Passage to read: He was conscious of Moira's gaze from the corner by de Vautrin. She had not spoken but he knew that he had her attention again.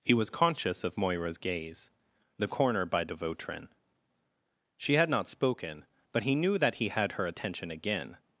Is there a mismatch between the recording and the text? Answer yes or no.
yes